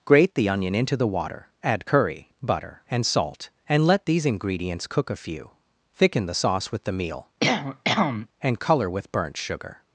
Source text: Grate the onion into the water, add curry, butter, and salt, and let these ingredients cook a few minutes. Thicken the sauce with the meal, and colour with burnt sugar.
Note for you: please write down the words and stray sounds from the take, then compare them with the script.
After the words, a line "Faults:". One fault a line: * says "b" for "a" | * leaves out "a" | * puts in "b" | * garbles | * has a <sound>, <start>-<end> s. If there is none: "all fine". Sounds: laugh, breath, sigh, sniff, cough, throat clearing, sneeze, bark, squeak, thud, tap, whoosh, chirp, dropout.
Grate the onion into the water, add curry, butter, and salt, and let these ingredients cook a few. Thicken the sauce with the meal, and colour with burnt sugar.
Faults:
* leaves out "minutes"
* has a cough, 7.4-8.3 s